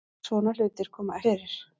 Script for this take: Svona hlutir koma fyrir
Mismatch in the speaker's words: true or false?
false